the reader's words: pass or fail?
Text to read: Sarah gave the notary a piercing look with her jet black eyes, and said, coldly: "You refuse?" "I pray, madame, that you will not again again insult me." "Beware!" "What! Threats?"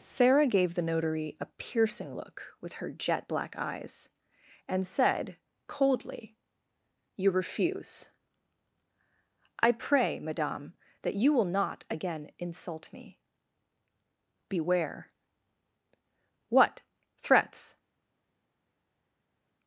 fail